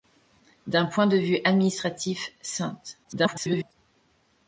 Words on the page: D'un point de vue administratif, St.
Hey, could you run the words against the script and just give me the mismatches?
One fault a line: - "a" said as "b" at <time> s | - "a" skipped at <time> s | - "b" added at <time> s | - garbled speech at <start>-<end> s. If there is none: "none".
- garbled speech at 3.0-3.7 s